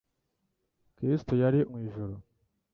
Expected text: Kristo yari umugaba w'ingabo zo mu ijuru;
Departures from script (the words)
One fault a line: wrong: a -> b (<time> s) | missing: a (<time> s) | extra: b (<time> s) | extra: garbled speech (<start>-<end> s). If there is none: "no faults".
missing: umugaba w'ingabo zo (1.6 s)